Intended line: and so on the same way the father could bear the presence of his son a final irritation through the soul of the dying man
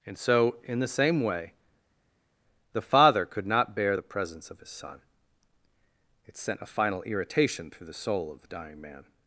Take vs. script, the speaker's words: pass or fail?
fail